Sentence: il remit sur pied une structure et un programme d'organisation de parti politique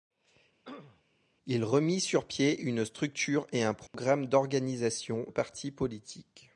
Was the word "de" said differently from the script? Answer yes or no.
yes